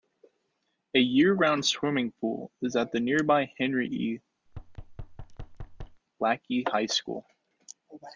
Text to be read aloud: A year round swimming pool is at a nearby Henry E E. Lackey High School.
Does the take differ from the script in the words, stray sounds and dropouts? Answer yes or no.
yes